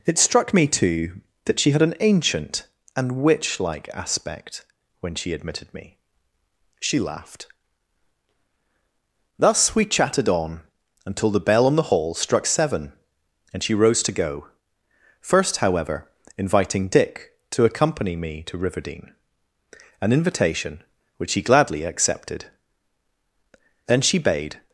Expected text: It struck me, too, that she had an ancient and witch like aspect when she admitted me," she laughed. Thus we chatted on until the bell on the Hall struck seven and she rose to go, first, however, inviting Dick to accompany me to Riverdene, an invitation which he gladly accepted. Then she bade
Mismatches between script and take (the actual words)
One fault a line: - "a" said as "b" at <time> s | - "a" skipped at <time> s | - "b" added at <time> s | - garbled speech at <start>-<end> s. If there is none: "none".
none